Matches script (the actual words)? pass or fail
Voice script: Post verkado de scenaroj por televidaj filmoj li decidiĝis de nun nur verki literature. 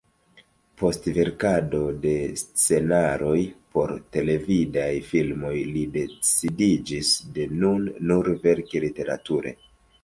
pass